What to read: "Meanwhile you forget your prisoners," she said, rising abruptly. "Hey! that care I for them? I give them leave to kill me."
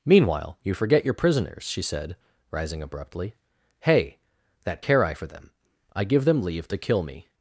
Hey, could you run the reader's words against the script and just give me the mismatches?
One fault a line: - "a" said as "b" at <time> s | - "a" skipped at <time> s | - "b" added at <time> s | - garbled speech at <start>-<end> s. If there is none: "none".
none